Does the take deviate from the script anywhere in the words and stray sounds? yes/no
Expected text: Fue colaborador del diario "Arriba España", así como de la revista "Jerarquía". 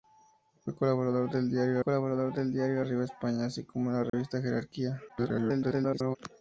yes